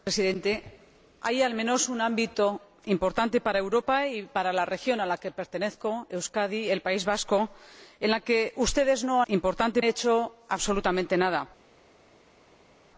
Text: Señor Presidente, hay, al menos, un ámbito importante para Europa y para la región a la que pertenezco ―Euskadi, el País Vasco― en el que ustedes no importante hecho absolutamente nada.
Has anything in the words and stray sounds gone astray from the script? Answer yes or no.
no